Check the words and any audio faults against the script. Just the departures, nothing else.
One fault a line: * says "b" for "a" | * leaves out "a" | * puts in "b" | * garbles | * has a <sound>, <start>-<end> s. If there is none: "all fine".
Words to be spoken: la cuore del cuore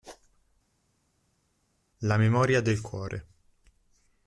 * says "memoria" for "cuore"